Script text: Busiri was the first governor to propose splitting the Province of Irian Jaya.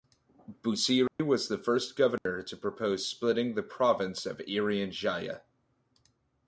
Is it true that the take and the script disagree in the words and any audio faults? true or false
true